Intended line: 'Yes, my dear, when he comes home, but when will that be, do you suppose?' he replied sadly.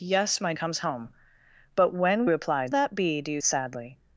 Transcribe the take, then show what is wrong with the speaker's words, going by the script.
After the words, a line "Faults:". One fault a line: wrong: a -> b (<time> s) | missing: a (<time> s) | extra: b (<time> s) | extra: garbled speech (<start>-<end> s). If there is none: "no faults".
'Yes, my comes home, but when replied that be, do you sadly.
Faults:
missing: dear when he (0.5 s)
wrong: will -> replied (2.3 s)
missing: suppose he replied (3.4 s)